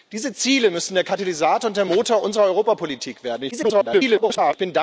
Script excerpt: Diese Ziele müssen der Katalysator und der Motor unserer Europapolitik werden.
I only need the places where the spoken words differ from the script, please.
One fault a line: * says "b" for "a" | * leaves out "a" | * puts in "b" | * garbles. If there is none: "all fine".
* garbles